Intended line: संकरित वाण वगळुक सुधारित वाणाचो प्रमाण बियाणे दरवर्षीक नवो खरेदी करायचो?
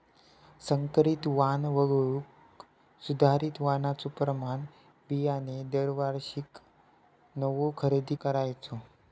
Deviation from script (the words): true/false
false